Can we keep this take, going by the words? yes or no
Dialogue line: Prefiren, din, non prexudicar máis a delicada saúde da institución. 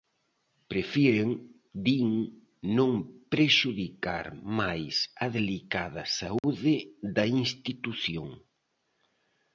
yes